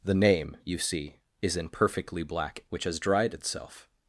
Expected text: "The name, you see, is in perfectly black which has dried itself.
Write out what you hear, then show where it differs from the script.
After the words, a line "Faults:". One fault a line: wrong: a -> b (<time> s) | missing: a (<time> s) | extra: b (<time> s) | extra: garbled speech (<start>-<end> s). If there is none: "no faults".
"The name, you see, is in perfectly black which has dried itself.
Faults:
no faults